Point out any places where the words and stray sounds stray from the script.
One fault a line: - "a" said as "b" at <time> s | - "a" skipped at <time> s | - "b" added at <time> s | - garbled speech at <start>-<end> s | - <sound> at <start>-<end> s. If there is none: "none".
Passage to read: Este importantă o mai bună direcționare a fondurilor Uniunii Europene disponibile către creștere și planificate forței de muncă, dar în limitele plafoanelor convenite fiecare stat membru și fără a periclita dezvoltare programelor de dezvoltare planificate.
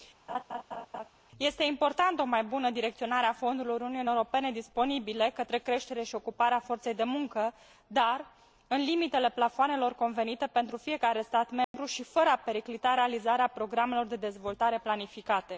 - laugh at 0.3-1.1 s
- "planificate" said as "ocuparea" at 6.1 s
- "pentru" added at 10.5 s
- dropout at 11.6-11.7 s
- "dezvoltare" said as "realizarea" at 12.9 s